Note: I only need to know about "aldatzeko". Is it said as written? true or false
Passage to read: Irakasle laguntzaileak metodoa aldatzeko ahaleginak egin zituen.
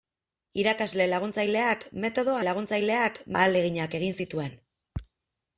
false